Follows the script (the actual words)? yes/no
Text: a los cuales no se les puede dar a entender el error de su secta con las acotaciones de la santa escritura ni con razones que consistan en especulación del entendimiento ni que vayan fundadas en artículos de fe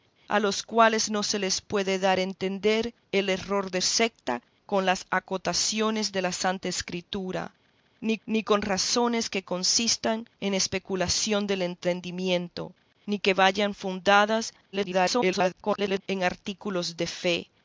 no